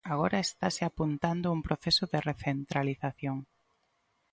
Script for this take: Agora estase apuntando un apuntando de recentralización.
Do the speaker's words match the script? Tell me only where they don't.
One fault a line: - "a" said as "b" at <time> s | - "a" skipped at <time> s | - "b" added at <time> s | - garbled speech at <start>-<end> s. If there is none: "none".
- "apuntando" said as "proceso" at 1.6 s